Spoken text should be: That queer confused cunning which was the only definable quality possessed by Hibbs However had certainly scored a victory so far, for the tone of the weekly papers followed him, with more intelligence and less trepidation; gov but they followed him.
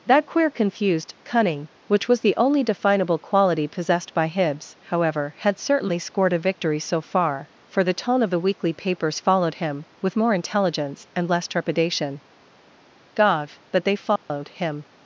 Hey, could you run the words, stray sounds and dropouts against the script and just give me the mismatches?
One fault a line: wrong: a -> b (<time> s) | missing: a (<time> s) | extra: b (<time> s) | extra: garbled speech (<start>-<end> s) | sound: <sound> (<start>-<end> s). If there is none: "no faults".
sound: dropout (14.2-14.3 s)